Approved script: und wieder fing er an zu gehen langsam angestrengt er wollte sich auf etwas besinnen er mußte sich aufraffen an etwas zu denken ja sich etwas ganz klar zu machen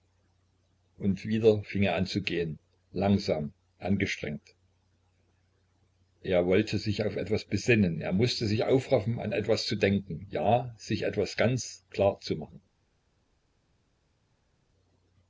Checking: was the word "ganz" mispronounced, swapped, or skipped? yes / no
no